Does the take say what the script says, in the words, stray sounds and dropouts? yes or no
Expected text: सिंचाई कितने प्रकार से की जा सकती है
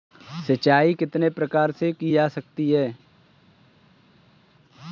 yes